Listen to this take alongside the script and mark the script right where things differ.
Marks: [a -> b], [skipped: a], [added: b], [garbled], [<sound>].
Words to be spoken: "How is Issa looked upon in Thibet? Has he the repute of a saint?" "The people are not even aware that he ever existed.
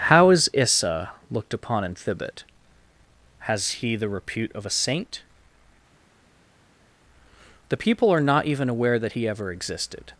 "How is Issa looked upon in Thibet? Has he the repute of a saint?" "The people are not even aware that he ever existed.